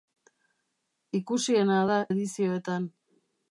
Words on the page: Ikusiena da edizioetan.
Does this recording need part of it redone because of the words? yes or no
no